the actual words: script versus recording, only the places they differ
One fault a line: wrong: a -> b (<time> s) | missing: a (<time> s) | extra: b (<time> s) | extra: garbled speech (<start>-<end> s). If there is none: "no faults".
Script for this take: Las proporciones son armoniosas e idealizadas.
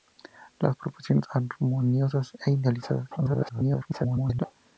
missing: son (1.2 s)
extra: garbled speech (3.2-4.5 s)